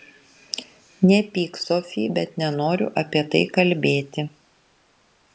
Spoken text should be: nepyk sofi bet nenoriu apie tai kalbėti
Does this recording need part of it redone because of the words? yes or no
no